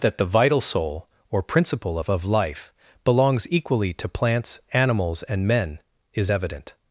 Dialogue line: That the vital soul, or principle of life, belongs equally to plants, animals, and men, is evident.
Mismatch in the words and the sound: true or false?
true